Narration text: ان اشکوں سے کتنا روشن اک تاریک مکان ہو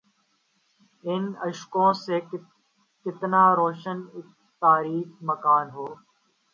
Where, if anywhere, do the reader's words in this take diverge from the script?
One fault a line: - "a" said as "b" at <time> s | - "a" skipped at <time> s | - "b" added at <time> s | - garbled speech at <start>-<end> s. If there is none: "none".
none